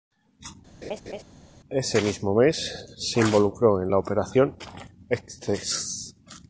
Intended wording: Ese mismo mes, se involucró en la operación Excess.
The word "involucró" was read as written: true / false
true